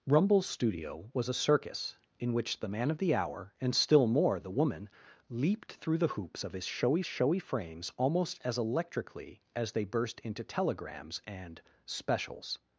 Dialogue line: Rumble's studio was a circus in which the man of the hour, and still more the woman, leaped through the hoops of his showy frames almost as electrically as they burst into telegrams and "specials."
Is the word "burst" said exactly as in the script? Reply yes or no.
yes